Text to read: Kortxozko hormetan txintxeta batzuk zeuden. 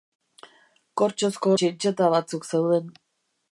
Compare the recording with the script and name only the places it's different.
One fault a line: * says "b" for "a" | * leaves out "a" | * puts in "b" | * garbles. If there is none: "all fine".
* leaves out "hormetan"